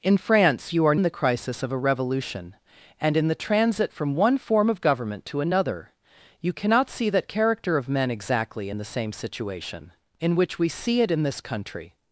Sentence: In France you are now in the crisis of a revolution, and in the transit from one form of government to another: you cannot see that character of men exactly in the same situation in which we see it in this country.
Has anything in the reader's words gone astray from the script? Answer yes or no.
yes